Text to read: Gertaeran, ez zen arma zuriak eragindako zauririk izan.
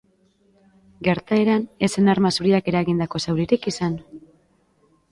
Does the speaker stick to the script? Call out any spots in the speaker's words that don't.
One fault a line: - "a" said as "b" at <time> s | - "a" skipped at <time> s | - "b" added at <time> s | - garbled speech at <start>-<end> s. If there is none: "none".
none